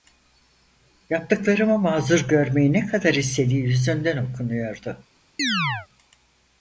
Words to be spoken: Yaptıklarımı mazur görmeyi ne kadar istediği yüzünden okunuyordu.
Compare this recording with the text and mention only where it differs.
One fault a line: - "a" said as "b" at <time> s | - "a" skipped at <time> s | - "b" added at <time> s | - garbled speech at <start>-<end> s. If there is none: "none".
none